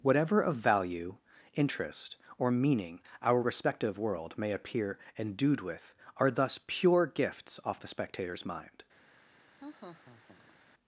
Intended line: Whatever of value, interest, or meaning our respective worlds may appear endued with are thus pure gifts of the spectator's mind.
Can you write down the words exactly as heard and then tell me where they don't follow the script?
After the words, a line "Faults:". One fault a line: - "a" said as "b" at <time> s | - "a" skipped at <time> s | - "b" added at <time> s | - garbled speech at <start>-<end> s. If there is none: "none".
Whatever of value, interest, or meaning our respective world may appear endued with are thus pure gifts off the spectator's mind.
Faults:
- "worlds" said as "world" at 4.0 s
- "of" said as "off" at 7.6 s